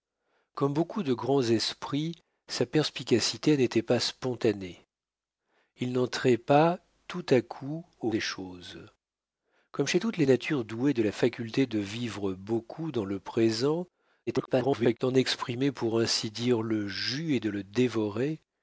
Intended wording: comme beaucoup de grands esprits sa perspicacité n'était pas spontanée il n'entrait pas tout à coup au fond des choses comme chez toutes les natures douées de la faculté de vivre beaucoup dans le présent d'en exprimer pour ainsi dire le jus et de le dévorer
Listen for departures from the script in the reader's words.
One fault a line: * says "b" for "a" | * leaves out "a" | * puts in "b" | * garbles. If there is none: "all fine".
* leaves out "fond"
* garbles